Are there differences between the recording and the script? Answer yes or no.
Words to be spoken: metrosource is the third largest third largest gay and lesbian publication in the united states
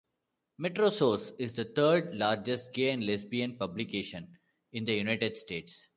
yes